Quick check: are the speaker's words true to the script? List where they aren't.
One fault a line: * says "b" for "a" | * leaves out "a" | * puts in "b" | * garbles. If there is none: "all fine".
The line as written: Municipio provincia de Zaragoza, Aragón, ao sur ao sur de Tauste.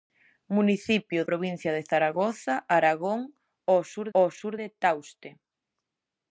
all fine